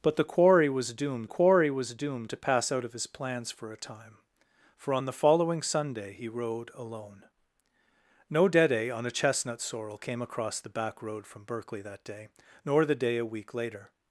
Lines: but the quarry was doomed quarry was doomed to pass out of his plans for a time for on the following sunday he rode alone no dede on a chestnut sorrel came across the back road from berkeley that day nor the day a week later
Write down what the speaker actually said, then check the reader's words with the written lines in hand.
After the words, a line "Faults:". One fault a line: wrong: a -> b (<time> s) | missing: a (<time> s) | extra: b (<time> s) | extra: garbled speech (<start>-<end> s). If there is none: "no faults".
but the quarry was doomed quarry was doomed to pass out of his plans for a time for on the following sunday he rode alone no dede on a chestnut sorrel came across the back road from berkeley that day nor the day a week later
Faults:
no faults